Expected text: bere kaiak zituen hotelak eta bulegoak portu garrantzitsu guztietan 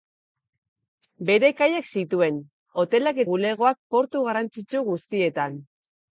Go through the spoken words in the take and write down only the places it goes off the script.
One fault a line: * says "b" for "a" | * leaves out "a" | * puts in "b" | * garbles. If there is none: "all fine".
* leaves out "eta"